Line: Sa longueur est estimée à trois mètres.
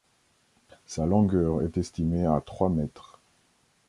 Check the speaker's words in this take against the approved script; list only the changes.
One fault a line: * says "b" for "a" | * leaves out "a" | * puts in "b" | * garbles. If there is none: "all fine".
all fine